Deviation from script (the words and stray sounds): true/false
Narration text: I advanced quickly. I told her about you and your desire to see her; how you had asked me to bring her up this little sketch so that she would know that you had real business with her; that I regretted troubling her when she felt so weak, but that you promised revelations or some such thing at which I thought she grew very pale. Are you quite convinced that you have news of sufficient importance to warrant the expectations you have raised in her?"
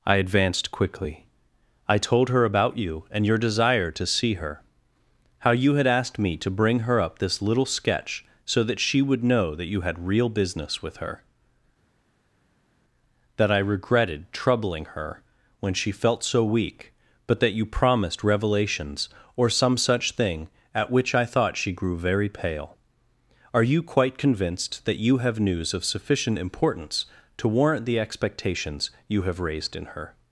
false